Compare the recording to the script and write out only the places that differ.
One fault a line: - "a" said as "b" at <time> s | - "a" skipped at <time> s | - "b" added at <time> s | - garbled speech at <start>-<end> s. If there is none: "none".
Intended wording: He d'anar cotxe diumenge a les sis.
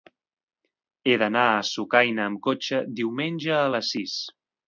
- "a Sucaina amb" added at 1.5 s